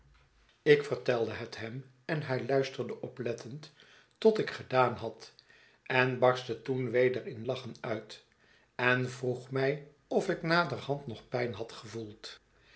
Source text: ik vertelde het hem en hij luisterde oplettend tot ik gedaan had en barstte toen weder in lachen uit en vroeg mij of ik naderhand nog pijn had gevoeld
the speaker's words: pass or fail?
pass